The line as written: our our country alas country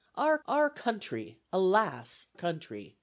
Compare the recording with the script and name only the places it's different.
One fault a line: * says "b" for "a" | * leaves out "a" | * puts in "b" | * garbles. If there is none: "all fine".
all fine